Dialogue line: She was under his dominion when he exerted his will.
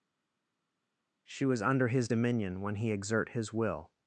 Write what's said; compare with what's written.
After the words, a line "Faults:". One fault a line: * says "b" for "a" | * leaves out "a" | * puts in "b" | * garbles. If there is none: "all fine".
She was under his dominion when he exert his will.
Faults:
* says "exert" for "exerted"